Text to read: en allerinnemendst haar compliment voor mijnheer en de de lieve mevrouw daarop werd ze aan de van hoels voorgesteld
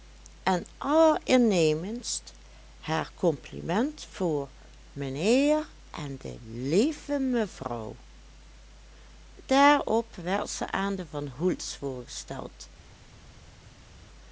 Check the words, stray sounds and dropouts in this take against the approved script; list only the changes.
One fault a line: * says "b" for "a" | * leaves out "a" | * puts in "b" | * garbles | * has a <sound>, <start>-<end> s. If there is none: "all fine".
* leaves out "de"